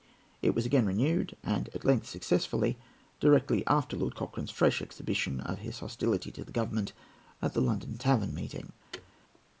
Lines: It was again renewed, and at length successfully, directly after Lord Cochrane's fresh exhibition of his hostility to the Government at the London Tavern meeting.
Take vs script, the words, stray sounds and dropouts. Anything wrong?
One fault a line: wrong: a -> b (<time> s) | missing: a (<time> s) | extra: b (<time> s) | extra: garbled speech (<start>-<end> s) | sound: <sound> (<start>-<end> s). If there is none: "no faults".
sound: thud (8.9-9.1 s)